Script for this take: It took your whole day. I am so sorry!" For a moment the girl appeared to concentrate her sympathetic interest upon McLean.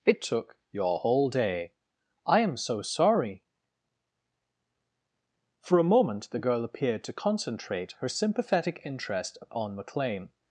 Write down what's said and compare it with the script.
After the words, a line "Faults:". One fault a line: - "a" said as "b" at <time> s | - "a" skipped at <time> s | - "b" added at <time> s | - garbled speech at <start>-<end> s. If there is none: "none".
It took your whole day. I am so sorry!" For a moment the girl appeared to concentrate her sympathetic interest on McLean.
Faults:
- "upon" said as "on" at 9.5 s